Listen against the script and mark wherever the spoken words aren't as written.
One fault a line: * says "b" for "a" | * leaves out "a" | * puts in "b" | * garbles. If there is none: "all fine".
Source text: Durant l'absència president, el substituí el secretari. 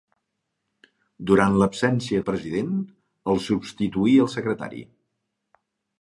all fine